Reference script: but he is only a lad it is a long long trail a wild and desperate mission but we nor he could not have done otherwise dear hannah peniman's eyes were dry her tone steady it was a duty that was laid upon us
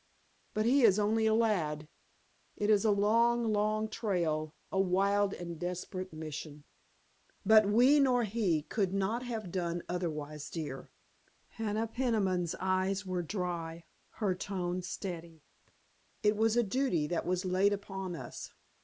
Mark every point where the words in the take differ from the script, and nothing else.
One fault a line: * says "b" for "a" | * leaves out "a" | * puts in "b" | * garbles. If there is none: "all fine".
all fine